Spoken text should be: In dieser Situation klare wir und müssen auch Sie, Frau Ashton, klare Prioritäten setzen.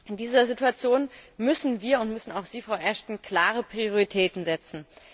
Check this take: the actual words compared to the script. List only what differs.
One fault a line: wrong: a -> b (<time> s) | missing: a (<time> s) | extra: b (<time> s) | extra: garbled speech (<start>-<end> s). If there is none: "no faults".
wrong: klare -> müssen (1.4 s)